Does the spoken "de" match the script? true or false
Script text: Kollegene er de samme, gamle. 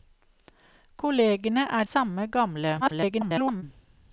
false